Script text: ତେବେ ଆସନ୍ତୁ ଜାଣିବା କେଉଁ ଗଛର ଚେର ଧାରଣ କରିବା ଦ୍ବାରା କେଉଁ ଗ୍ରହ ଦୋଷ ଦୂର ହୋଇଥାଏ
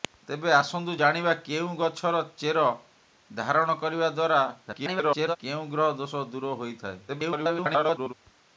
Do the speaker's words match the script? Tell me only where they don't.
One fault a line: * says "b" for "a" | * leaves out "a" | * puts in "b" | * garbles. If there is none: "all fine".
* garbles
* garbles